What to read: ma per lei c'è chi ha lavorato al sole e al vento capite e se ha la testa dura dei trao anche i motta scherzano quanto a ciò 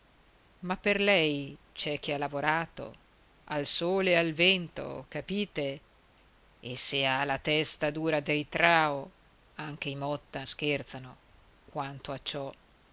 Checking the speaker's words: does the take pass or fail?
pass